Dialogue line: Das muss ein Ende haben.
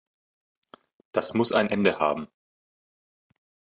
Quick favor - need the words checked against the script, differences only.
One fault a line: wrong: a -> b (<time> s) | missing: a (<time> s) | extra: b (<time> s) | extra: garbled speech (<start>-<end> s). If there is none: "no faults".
no faults